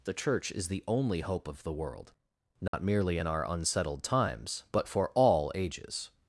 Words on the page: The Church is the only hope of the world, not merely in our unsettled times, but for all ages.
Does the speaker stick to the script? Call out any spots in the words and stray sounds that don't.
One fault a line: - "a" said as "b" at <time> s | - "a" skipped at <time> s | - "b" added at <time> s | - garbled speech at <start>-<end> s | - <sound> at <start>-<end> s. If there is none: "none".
- dropout at 2.7-2.7 s